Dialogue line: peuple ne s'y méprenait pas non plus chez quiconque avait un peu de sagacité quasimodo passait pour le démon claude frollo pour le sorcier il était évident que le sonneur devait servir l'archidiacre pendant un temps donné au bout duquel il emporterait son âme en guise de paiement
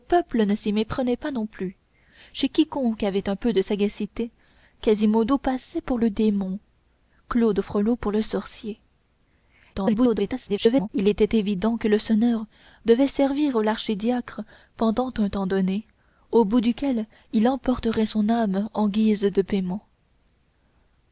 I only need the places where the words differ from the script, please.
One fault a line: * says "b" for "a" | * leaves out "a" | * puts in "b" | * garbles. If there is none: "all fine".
* garbles